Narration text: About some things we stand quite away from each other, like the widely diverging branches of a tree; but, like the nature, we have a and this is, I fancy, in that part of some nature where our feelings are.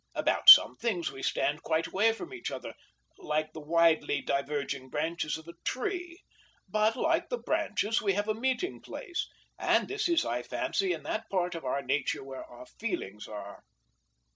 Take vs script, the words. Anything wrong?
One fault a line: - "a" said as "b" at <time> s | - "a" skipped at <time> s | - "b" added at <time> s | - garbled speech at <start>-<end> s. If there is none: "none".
- "nature" said as "branches" at 7.4 s
- "meeting place" added at 8.3 s
- "some" said as "our" at 11.7 s